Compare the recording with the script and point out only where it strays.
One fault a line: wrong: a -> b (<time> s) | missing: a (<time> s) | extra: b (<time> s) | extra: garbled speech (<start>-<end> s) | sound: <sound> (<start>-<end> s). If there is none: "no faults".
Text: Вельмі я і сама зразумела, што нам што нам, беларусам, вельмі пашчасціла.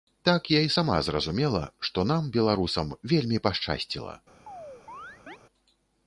wrong: Вельмі -> Так (0.3 s)
missing: што нам (2.3 s)
sound: chirp (4.5-5.4 s)